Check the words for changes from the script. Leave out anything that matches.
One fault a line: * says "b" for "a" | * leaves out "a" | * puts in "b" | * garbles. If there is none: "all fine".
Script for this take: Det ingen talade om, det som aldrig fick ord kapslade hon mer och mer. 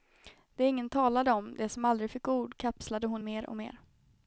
all fine